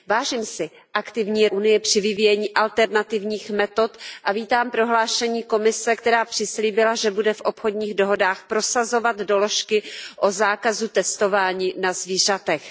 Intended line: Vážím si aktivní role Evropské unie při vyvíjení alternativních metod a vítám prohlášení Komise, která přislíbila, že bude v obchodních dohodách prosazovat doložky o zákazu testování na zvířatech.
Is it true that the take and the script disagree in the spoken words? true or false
true